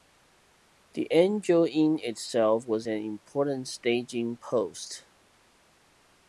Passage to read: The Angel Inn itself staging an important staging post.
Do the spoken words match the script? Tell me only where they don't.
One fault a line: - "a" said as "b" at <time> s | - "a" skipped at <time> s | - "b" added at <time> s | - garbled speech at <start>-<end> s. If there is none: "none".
- "staging" said as "was" at 2.6 s